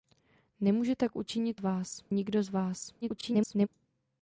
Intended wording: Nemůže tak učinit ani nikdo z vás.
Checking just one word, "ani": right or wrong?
wrong